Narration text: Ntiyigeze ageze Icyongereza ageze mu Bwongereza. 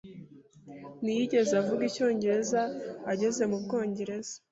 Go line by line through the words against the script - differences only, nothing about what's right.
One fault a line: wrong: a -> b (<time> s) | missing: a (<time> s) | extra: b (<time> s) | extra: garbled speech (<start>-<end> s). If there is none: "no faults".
wrong: ageze -> avuga (1.6 s)